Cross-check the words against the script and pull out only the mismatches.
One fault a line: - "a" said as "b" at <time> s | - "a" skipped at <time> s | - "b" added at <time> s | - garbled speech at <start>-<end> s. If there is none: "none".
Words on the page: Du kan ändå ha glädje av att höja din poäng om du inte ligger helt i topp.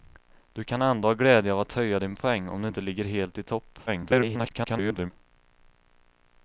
- garbled speech at 3.9-5.1 s